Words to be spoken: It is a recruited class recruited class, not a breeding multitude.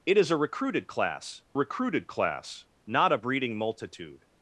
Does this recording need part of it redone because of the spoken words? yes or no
no